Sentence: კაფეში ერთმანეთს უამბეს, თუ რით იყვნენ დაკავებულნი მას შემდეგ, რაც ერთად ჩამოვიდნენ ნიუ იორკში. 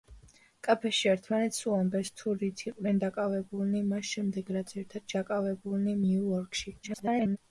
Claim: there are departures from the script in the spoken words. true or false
true